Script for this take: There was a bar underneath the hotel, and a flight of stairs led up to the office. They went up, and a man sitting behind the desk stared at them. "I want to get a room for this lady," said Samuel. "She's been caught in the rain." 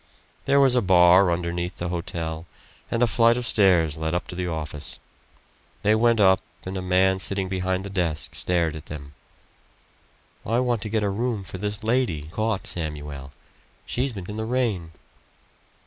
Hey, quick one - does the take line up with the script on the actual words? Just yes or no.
no